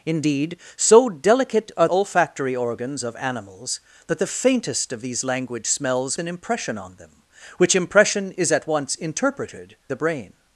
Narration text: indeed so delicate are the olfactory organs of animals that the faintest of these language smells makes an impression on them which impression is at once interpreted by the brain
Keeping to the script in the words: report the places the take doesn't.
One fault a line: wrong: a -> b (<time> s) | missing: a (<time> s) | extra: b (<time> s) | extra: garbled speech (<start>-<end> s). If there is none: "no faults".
missing: the (1.9 s)
missing: makes (6.2 s)
missing: by (9.7 s)